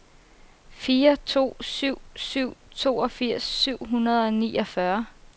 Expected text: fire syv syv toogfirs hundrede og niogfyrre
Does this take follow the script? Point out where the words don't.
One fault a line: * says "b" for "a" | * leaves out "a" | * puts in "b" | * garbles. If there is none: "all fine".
* puts in "to"
* puts in "syv"